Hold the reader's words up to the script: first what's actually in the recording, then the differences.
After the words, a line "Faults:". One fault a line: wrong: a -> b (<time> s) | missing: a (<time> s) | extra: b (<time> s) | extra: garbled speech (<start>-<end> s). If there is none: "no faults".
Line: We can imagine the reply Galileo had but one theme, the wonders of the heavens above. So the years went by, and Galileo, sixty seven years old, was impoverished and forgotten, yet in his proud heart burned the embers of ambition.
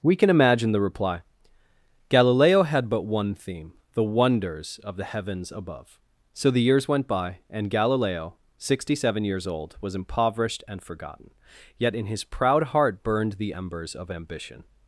We can imagine the reply Galileo had but one theme, the wonders of the heavens above. So the years went by, and Galileo, sixty seven years old, was impoverished and forgotten, yet in his proud heart burned the embers of ambition.
Faults:
no faults